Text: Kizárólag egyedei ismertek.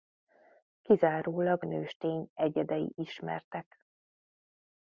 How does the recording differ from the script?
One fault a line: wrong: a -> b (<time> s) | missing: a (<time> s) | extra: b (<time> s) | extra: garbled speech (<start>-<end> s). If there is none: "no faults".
extra: nőstény (1.6 s)